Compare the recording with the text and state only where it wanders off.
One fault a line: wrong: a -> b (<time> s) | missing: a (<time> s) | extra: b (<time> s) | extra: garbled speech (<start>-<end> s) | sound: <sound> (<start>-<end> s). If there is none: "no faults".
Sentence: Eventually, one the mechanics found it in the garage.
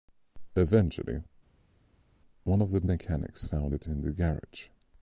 extra: of (2.6 s)